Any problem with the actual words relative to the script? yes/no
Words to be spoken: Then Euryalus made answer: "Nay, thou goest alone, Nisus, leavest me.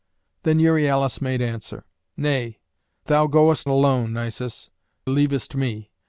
no